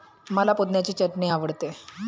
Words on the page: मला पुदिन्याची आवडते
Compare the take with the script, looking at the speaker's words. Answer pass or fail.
fail